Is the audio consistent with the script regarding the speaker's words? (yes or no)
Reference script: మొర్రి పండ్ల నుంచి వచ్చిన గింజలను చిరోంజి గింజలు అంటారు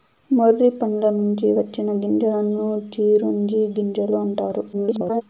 no